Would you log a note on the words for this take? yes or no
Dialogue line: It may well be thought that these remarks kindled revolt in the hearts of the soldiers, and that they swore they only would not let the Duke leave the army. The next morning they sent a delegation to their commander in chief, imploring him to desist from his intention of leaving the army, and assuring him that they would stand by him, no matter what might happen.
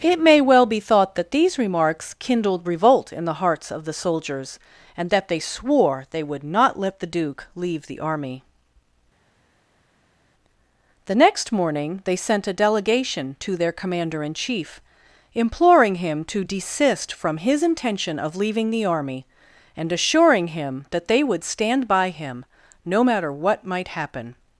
yes